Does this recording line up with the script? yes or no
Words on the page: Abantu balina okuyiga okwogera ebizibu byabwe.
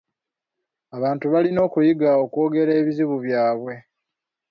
yes